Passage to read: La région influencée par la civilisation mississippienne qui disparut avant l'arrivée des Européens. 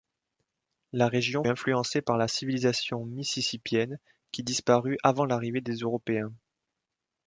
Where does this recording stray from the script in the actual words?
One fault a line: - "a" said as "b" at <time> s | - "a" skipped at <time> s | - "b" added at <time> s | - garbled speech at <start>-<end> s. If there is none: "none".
none